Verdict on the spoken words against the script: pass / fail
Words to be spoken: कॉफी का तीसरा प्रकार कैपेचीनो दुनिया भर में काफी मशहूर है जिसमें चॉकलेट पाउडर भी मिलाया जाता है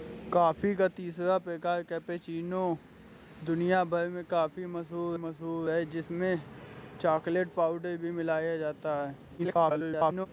fail